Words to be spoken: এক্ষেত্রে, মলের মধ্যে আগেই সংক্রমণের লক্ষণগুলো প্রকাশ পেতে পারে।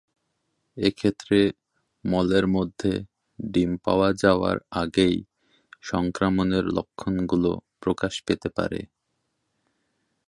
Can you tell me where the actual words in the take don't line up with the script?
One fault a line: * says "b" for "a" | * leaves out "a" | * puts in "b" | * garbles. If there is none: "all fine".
* puts in "ডিম পাওয়া যাওয়ার"